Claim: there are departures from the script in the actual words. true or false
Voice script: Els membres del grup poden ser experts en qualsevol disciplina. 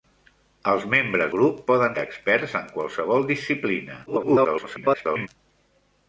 true